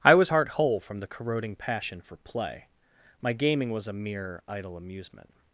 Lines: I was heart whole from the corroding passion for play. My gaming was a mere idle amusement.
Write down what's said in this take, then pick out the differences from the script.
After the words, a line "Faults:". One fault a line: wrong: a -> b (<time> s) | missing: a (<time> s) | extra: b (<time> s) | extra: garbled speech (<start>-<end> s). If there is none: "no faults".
I was heart whole from the corroding passion for play. My gaming was a mere idle amusement.
Faults:
no faults